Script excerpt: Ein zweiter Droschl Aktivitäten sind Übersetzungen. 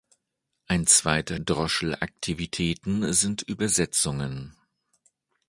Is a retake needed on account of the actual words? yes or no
no